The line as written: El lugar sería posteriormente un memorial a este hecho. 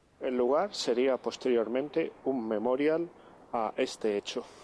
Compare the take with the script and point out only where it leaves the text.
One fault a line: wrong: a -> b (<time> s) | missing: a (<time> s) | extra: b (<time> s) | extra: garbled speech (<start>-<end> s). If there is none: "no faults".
no faults